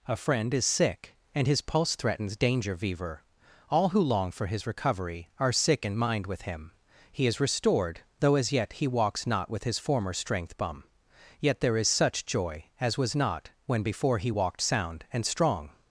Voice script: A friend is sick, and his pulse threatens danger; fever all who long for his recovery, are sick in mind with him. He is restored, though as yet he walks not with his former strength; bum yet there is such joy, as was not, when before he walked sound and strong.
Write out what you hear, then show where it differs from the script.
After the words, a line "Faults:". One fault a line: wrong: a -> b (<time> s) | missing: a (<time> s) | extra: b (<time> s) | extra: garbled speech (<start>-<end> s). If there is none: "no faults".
A friend is sick, and his pulse threatens danger; fever all who long for his recovery, are sick in mind with him. He is restored, though as yet he walks not with his former strength; bum yet there is such joy, as was not, when before he walked sound and strong.
Faults:
no faults